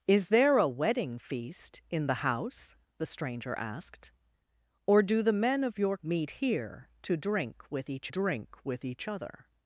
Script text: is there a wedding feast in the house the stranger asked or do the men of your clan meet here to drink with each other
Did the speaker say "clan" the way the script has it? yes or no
no